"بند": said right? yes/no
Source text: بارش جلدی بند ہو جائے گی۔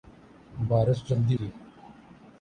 no